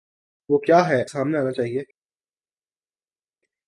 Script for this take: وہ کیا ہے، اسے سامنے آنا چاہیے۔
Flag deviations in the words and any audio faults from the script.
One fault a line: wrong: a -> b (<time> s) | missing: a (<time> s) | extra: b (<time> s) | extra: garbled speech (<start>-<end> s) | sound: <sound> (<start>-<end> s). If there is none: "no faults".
missing: اسے (1.0 s)